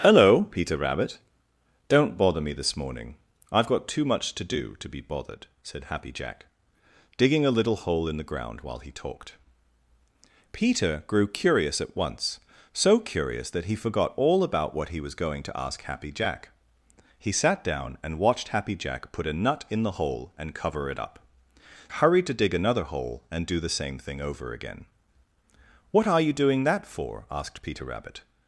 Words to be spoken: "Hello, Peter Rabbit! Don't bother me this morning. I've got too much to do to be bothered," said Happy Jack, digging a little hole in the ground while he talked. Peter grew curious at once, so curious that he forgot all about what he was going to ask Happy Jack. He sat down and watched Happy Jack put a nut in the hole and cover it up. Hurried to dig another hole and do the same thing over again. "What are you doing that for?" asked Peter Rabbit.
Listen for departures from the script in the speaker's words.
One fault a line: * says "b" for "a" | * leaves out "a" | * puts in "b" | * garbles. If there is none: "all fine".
all fine